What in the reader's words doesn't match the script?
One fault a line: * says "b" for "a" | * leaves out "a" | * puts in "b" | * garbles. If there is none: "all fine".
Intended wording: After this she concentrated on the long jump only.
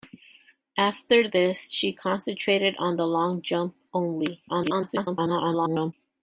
* garbles